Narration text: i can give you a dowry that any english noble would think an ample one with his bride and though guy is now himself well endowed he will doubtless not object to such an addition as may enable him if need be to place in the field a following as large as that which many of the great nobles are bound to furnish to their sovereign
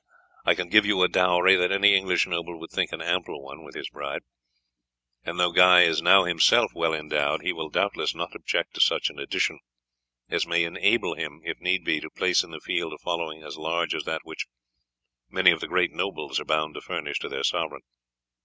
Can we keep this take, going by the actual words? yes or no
yes